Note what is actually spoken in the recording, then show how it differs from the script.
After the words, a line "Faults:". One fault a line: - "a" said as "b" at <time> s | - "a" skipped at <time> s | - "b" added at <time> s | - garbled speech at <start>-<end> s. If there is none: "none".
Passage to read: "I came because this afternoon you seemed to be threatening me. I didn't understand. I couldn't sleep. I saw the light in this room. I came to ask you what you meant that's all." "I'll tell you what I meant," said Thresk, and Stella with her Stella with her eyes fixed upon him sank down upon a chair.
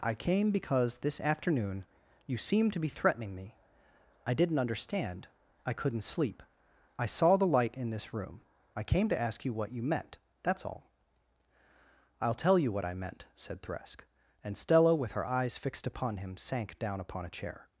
"I came because this afternoon you seemed to be threatening me. I didn't understand. I couldn't sleep. I saw the light in this room. I came to ask you what you meant that's all." "I'll tell you what I meant," said Thresk, and Stella with her eyes fixed upon him sank down upon a chair.
Faults:
- "Stella with her" skipped at 15.2 s